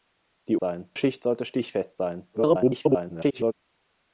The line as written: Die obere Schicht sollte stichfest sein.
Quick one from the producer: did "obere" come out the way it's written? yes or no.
no